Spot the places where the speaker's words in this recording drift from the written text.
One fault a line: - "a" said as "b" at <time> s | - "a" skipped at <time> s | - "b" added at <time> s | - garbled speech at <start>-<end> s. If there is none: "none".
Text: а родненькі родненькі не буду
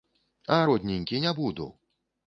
- "родненькі" skipped at 1.2 s